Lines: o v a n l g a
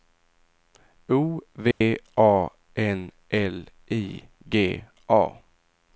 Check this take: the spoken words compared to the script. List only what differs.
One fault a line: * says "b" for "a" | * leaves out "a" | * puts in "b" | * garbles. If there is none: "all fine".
* puts in "i"